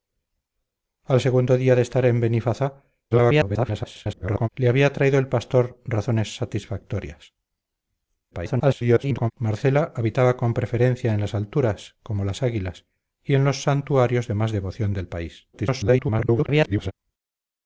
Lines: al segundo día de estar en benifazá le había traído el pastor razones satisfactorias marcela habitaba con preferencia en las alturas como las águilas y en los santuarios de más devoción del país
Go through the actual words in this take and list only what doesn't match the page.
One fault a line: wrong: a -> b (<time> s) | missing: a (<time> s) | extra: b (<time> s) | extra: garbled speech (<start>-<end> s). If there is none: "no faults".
extra: garbled speech (3.1-4.5 s)
extra: garbled speech (8.3-9.3 s)
extra: garbled speech (15.5-16.9 s)